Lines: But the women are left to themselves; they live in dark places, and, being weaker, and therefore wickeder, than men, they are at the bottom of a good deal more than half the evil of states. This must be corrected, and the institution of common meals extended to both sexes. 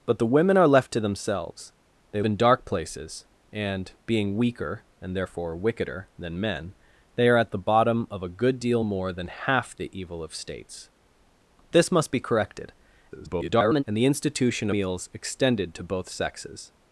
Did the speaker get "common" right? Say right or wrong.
wrong